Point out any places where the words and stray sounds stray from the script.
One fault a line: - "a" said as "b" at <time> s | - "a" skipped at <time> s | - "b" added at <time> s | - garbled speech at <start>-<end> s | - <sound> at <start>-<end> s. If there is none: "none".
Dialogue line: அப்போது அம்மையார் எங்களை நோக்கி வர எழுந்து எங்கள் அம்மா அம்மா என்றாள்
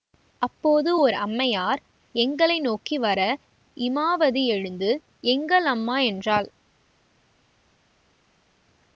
- "ஓர்" added at 1.0 s
- "இமாவதி" added at 3.8 s
- "அம்மா" skipped at 6.0 s